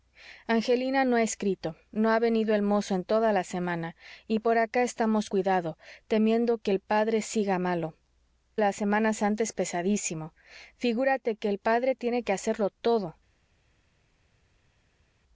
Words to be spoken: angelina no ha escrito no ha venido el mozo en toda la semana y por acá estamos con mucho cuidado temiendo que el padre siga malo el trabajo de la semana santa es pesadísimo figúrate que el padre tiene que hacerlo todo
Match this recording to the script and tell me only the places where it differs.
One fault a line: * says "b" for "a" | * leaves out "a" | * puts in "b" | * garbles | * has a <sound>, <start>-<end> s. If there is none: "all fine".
* leaves out "con mucho"
* leaves out "el trabajo de"